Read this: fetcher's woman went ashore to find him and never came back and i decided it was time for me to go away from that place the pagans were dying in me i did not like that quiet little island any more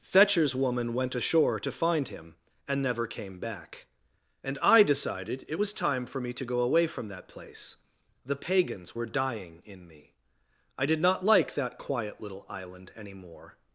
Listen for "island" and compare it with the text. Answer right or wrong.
right